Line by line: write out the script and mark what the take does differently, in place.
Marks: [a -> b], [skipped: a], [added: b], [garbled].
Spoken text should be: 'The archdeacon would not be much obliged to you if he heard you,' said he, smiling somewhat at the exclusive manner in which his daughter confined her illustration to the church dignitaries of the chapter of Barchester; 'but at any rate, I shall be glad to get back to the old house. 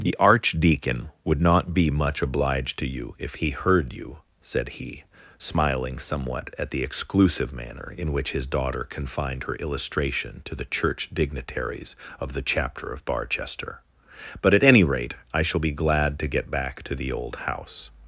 'The archdeacon would not be much obliged to you if he heard you,' said he, smiling somewhat at the exclusive manner in which his daughter confined her illustration to the church dignitaries of the chapter of Barchester; 'but at any rate, I shall be glad to get back to the old house.